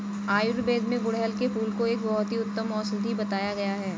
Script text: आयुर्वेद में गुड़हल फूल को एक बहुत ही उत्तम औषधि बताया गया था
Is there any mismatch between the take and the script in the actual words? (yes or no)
yes